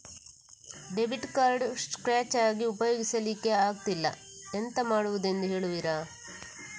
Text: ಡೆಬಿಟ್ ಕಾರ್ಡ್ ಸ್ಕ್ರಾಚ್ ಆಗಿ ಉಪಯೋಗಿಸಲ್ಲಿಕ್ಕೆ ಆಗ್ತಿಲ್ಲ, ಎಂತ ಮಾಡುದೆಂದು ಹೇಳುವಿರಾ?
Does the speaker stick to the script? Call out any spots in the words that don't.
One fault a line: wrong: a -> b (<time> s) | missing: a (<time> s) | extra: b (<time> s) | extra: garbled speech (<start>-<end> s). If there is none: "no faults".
no faults